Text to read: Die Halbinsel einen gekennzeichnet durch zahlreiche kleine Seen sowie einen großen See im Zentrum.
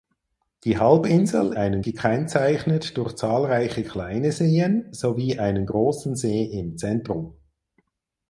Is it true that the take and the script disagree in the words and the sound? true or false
false